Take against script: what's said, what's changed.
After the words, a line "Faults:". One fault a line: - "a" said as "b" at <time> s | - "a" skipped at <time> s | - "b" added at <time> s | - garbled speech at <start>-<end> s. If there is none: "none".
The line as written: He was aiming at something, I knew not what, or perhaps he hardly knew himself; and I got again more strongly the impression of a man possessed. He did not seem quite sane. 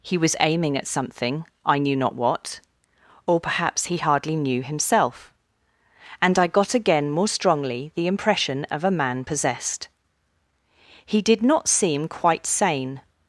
He was aiming at something, I knew not what, or perhaps he hardly knew himself; and I got again more strongly the impression of a man possessed. He did not seem quite sane.
Faults:
none